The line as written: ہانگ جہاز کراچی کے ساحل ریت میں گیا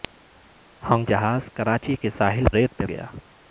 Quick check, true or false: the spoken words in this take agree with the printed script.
true